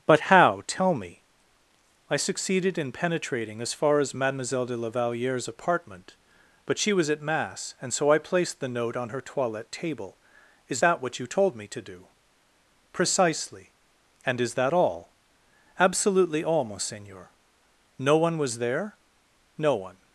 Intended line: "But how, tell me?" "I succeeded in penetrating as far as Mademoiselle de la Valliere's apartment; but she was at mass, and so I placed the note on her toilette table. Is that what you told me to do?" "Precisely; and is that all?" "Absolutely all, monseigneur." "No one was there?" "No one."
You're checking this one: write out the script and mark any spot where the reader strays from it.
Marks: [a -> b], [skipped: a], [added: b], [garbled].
"But how, tell me?" "I succeeded in penetrating as far as Mademoiselle de la Valliere's apartment; but she was at mass, and so I placed the note on her toilette table. Is that what you told me to do?" "Precisely; and is that all?" "Absolutely all, monseigneur." "No one was there?" "No one."